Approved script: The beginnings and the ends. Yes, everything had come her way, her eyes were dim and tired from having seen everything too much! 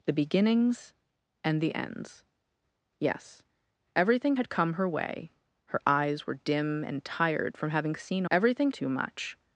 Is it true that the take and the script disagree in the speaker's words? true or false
false